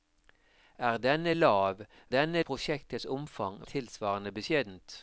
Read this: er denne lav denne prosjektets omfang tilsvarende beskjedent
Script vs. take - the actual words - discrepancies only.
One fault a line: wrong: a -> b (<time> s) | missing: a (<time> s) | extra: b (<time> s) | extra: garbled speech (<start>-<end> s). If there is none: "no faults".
no faults